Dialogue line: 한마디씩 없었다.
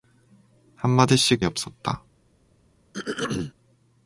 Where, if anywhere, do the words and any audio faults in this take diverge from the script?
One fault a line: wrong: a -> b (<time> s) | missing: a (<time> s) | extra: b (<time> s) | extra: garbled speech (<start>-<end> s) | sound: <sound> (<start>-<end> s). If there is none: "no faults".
sound: throat clearing (2.9-3.5 s)